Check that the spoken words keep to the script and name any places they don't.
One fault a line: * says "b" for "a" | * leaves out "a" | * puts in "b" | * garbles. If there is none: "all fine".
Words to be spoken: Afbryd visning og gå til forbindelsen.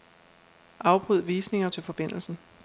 * leaves out "gå"